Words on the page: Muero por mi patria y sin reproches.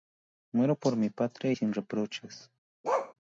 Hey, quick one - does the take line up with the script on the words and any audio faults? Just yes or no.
no